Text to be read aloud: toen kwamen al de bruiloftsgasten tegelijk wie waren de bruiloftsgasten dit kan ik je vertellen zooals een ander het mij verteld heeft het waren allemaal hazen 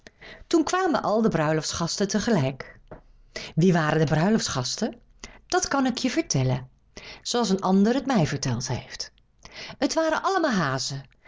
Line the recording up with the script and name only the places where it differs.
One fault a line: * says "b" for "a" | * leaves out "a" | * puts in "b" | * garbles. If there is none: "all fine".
* says "dat" for "dit"